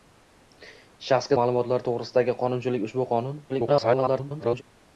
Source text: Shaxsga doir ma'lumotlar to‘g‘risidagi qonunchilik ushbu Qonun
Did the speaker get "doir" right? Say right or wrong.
wrong